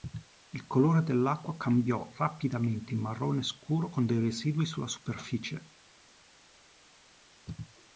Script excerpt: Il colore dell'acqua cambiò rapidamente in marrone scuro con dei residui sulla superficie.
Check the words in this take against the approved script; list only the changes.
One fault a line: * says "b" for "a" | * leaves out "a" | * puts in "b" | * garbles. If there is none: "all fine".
all fine